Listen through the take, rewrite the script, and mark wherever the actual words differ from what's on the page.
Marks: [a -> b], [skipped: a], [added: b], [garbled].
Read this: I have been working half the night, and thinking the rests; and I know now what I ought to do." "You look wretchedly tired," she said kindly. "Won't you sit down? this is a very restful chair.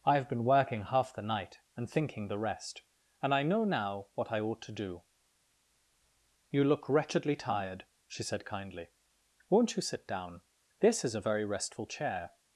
I have been working half the night, and thinking the [rests; -> rest] and I know now what I ought to do." "You look wretchedly tired," she said kindly. "Won't you sit down? this is a very restful chair.